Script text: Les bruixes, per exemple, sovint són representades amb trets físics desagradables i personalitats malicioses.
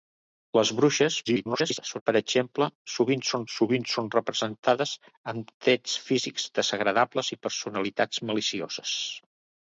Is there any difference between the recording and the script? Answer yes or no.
yes